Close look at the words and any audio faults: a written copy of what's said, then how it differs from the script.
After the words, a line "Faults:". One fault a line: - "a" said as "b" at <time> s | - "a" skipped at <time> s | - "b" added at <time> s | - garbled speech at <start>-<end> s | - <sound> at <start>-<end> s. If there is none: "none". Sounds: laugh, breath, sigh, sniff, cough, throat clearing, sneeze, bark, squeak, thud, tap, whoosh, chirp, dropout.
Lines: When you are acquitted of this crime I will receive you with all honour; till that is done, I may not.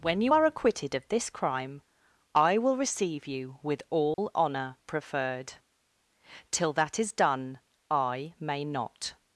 When you are acquitted of this crime I will receive you with all honour; preferred till that is done, I may not.
Faults:
- dropout at 4.1-4.2 s
- "preferred" added at 4.8 s